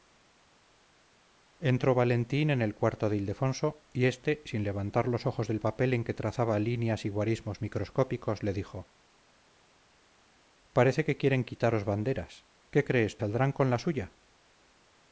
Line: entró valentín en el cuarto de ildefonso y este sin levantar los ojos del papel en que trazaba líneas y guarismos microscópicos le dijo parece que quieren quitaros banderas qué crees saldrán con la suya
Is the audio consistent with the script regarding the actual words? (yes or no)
yes